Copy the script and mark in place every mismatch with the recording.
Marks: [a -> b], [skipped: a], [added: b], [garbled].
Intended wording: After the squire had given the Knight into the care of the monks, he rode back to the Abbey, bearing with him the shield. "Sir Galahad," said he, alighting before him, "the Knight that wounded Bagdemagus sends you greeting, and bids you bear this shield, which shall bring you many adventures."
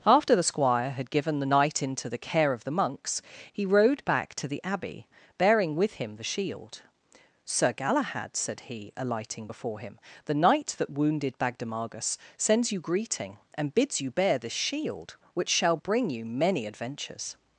After the squire had given the Knight into the care of the monks, he rode back to the Abbey, bearing with him the shield. "Sir Galahad," said he, alighting before him, "the Knight that wounded Bagdemagus sends you greeting, and bids you bear this shield, which shall bring you many adventures."